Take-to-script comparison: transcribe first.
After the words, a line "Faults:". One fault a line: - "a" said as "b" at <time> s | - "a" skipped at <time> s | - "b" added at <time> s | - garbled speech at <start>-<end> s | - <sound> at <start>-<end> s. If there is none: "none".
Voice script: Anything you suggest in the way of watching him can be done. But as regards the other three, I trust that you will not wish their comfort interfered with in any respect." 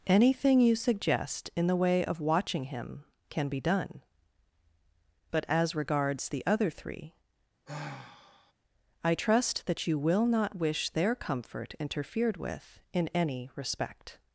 Anything you suggest in the way of watching him can be done. But as regards the other three, I trust that you will not wish their comfort interfered with in any respect."
Faults:
- sigh at 7.7-8.5 s